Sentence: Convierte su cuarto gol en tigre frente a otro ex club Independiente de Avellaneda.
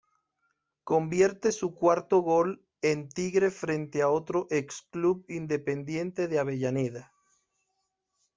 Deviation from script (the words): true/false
false